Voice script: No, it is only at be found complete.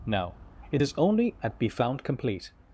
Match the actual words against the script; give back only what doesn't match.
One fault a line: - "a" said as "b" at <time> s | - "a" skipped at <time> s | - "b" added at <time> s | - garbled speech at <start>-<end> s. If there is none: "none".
none